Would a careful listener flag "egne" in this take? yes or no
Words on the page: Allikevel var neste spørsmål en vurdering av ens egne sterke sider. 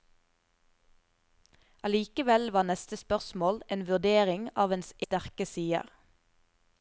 yes